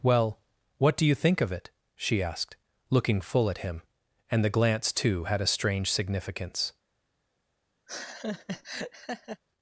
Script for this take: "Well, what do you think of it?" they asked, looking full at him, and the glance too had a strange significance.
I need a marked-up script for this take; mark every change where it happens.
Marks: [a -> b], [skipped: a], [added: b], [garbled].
"Well, what do you think of it?" [they -> she] asked, looking full at him, and the glance too had a strange significance.